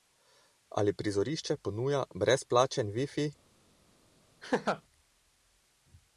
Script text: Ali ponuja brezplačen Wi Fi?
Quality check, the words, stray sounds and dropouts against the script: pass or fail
fail